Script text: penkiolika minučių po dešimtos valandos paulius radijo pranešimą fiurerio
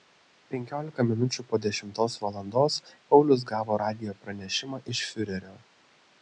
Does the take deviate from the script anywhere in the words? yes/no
yes